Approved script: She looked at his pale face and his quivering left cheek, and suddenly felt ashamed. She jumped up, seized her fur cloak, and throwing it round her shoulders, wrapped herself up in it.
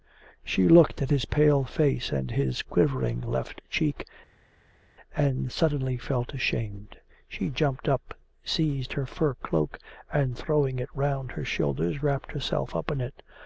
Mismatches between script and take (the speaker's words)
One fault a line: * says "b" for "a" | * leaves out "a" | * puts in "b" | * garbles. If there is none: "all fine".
all fine